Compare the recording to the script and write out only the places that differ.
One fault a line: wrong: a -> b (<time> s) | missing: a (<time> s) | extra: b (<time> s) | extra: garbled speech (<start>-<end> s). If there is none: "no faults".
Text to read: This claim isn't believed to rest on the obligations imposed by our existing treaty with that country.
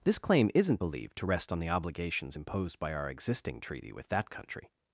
no faults